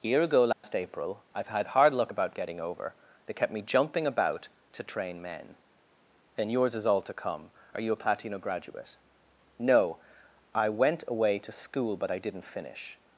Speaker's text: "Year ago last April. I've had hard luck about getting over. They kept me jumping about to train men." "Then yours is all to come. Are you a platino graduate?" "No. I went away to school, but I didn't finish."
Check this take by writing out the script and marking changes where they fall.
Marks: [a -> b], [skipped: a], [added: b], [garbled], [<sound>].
"Year ago last [dropout] April. I've had hard luck about getting over. They kept me jumping about to train men." "Then yours is all to come. Are you a platino graduate?" "No. I went away to school, but I didn't finish."